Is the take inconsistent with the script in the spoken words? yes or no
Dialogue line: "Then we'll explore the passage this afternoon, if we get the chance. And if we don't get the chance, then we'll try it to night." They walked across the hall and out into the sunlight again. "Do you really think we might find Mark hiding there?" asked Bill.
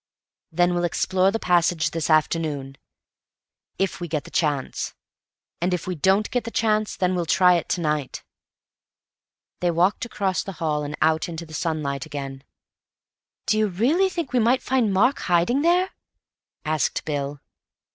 no